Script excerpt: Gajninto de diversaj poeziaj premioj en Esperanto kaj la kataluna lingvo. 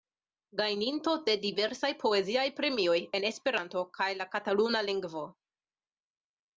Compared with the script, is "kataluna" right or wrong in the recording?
right